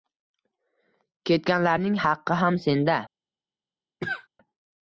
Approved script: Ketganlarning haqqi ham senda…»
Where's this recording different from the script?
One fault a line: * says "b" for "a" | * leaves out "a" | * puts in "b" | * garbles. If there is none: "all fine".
all fine